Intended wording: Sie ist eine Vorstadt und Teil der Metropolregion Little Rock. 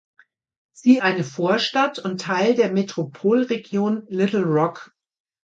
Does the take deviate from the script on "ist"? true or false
true